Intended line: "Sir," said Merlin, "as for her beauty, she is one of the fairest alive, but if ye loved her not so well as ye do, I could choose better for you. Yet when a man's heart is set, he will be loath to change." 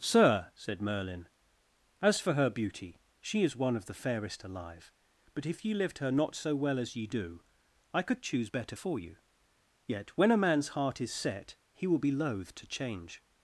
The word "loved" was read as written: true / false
false